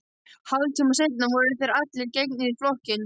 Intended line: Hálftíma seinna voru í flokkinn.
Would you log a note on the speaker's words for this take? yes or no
yes